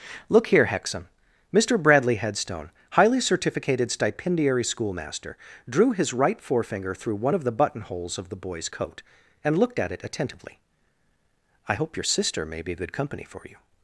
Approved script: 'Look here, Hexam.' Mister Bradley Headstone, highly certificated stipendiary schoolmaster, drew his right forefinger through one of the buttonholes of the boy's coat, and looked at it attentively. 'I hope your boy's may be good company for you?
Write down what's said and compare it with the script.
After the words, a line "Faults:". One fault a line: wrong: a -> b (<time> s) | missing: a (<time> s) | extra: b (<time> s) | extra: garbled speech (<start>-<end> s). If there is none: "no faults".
'Look here, Hexam.' Mister Bradley Headstone, highly certificated stipendiary schoolmaster, drew his right forefinger through one of the buttonholes of the boy's coat, and looked at it attentively. 'I hope your sister may be good company for you?
Faults:
wrong: boy's -> sister (12.0 s)